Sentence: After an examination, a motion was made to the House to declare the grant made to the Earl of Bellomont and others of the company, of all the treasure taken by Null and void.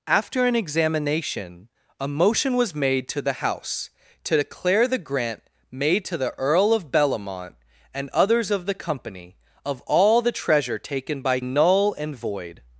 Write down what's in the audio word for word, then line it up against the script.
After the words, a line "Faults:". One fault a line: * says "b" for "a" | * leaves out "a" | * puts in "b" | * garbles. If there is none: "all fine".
After an examination, a motion was made to the House to declare the grant made to the Earl of Bellomont and others of the company, of all the treasure taken by Null and void.
Faults:
all fine